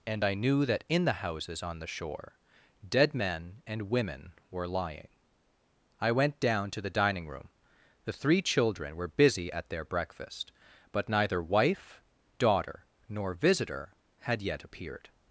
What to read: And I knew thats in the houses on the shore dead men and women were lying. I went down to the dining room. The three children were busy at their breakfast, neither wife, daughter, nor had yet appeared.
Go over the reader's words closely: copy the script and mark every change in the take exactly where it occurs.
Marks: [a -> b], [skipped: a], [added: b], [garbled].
And I knew [thats -> that] in the houses on the shore dead men and women were lying. I went down to the dining room. The three children were busy at their breakfast, [added: but] neither wife, daughter, nor [added: visitor] had yet appeared.